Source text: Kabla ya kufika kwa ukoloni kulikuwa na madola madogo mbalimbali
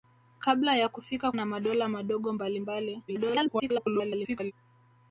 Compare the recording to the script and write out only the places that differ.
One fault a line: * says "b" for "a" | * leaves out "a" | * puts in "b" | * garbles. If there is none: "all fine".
* leaves out "kwa ukoloni kulikuwa"
* garbles